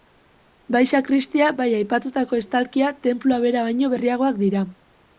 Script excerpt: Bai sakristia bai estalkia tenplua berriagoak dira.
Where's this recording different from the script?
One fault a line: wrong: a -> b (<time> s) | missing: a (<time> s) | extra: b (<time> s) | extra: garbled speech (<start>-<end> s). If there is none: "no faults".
extra: aipatutako (1.8 s)
extra: bera baino (3.5 s)